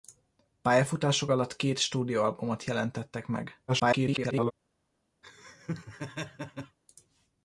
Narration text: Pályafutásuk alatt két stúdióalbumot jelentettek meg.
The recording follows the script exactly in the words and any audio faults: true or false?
false